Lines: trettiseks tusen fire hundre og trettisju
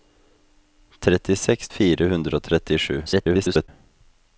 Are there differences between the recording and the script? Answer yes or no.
yes